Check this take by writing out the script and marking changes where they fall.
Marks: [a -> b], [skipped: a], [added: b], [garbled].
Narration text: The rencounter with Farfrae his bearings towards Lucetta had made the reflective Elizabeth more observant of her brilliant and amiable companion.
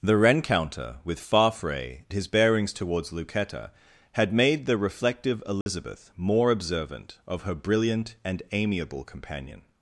The rencounter with Farfrae his bearings towards Lucetta had made the reflective Elizabeth more observant of her brilliant and amiable companion.